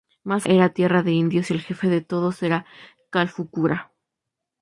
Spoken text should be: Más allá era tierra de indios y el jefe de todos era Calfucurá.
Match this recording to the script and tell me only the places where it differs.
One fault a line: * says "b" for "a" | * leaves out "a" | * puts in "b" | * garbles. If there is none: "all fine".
* leaves out "allá"